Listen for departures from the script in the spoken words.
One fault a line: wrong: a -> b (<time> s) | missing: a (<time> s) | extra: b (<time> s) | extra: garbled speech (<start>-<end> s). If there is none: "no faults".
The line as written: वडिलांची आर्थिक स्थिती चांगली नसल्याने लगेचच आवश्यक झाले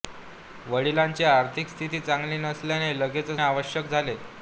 no faults